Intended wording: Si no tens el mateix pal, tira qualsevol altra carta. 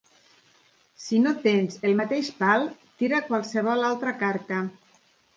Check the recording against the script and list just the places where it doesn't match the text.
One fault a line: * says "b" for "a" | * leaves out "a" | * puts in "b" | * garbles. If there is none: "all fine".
all fine